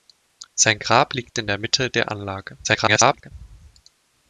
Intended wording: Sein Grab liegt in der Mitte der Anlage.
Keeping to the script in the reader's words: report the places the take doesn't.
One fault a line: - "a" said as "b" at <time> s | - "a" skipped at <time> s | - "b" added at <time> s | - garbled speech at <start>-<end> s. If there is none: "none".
- garbled speech at 2.6-3.3 s